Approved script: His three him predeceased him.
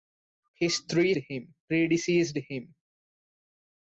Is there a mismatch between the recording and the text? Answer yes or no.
no